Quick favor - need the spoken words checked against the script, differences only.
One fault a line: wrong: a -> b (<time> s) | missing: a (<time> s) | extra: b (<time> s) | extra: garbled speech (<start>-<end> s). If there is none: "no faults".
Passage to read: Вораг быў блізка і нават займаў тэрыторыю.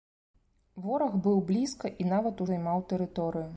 no faults